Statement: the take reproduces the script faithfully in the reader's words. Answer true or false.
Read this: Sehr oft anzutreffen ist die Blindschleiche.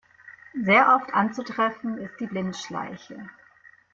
true